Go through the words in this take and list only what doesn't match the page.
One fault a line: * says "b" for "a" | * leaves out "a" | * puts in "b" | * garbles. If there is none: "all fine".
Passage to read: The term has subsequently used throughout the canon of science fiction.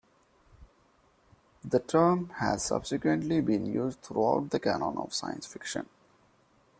* puts in "been"